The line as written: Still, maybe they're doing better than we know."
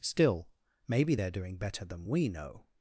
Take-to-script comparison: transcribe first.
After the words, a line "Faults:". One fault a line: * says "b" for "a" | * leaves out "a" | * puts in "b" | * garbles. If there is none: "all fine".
Still, maybe they're doing better than we know."
Faults:
all fine